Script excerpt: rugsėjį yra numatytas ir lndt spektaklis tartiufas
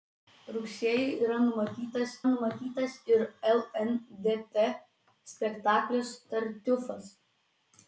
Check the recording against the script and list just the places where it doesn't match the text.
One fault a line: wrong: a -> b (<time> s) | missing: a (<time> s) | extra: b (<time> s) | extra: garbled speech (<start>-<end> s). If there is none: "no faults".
extra: numatytas (2.3 s)